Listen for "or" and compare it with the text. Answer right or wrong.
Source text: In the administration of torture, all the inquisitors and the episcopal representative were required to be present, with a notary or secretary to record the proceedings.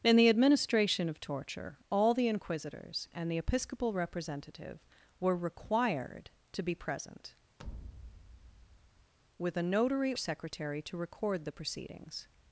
wrong